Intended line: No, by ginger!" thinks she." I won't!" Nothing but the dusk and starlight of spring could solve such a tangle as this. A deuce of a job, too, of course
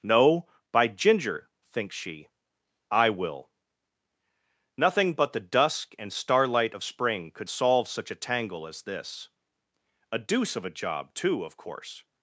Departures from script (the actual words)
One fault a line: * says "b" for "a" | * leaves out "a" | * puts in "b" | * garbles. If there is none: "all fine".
* says "will" for "won't"